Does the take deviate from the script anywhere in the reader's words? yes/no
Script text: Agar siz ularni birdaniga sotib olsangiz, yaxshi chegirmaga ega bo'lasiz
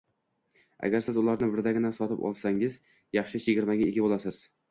no